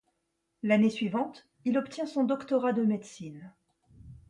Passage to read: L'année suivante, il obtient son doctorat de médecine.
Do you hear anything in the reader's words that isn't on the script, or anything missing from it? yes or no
no